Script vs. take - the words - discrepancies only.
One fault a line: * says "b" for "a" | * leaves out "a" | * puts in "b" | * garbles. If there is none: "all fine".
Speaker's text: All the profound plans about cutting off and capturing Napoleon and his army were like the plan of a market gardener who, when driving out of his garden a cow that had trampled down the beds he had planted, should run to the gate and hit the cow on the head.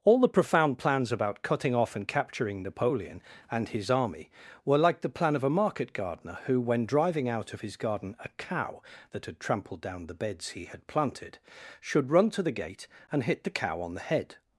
all fine